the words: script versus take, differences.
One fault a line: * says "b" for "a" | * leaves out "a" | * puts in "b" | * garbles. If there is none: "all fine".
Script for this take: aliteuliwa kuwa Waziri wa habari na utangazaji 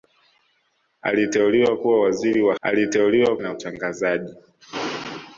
* says "aliteuliwa" for "habari"